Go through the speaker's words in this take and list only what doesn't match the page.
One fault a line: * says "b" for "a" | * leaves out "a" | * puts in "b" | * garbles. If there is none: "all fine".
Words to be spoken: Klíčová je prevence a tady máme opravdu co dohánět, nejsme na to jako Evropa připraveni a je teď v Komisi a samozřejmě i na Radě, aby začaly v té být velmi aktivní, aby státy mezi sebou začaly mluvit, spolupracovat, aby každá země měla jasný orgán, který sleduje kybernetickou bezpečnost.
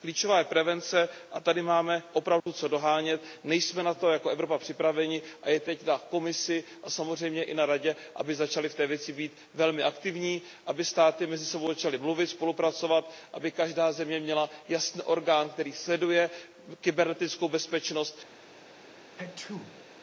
* says "na" for "v"
* puts in "věci"